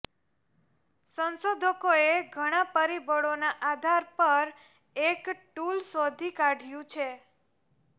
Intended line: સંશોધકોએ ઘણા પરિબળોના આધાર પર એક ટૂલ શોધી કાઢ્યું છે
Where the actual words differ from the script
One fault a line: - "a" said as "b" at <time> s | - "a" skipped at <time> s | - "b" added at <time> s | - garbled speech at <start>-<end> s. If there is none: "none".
none